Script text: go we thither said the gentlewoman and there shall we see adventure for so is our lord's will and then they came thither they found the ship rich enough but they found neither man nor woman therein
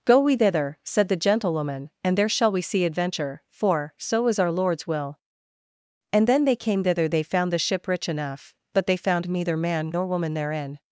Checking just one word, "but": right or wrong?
right